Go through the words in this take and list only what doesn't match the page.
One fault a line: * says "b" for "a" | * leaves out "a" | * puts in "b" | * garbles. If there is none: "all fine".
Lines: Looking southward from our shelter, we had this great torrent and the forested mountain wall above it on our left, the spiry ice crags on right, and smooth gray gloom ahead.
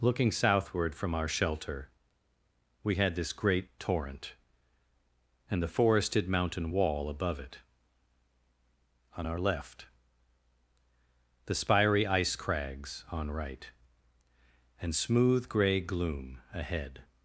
all fine